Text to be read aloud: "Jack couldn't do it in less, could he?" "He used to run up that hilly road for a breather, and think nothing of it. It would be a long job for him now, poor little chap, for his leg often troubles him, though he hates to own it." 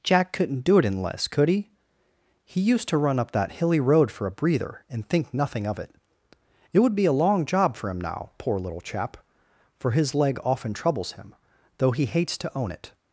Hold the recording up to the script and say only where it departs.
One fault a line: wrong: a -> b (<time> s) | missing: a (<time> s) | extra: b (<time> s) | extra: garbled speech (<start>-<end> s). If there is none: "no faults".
no faults